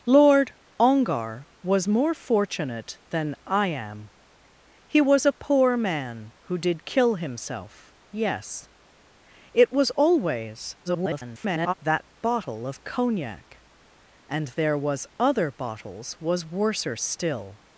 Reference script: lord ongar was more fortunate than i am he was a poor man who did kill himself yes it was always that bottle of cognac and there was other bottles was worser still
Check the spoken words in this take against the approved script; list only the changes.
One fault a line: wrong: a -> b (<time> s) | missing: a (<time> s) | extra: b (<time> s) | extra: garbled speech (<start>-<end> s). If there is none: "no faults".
extra: garbled speech (10.8-11.7 s)